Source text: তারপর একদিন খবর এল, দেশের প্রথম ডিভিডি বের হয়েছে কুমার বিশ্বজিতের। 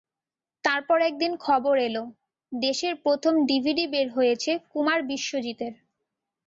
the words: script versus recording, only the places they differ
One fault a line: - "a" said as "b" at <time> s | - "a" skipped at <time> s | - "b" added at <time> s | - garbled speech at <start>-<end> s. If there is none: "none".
none